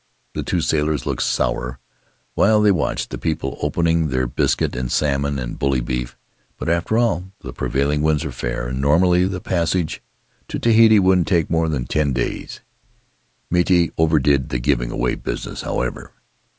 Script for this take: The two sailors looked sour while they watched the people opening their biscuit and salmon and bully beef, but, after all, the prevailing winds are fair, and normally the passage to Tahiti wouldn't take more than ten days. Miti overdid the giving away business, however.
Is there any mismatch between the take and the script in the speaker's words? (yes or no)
no